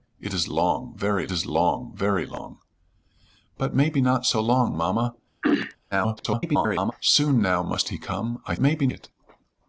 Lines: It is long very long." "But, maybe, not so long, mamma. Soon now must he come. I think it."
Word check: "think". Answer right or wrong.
wrong